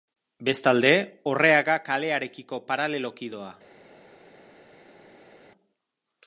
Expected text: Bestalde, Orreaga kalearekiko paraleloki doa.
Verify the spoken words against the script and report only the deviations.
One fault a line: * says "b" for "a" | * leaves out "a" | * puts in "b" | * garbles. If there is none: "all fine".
all fine